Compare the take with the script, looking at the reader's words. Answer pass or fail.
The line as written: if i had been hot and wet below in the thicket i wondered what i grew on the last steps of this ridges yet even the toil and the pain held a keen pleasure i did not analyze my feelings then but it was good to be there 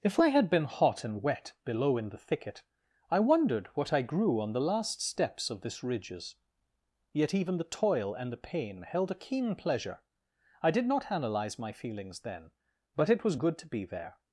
pass